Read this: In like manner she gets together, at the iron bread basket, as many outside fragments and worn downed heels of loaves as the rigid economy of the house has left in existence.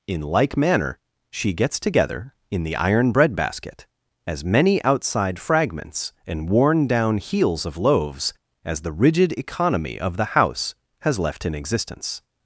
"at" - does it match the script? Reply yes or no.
no